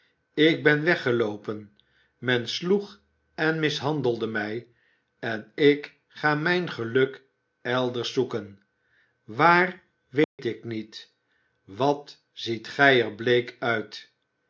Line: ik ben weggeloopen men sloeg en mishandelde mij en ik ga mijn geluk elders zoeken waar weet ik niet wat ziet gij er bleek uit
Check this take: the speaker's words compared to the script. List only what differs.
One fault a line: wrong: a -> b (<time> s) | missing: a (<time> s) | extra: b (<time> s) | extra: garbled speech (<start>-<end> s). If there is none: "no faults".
no faults